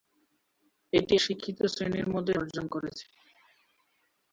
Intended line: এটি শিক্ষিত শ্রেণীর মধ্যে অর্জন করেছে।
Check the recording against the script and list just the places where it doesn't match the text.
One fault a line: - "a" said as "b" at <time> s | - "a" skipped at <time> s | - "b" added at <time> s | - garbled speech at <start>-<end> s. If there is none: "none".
none